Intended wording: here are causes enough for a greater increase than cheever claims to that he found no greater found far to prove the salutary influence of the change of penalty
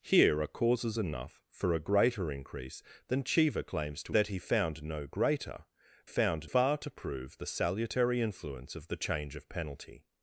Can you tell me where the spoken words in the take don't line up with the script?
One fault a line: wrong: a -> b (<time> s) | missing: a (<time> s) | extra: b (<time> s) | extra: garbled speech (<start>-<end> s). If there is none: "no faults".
no faults